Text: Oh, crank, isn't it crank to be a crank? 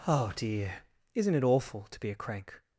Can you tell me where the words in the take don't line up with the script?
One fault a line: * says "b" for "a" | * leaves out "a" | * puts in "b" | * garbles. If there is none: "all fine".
* says "dear" for "crank"
* says "awful" for "crank"